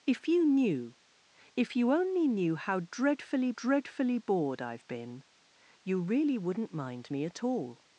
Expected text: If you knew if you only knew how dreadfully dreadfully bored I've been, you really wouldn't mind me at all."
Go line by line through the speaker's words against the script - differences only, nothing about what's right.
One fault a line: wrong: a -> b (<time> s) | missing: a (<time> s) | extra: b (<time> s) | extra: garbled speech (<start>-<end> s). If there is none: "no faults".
no faults